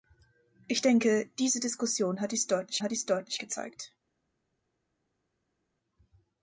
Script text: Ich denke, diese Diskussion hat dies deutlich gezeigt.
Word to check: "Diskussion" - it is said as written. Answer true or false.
true